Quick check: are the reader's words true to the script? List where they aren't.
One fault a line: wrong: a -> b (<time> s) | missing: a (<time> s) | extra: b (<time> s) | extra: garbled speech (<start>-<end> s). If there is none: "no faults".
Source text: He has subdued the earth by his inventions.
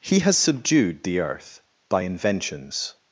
missing: his (2.0 s)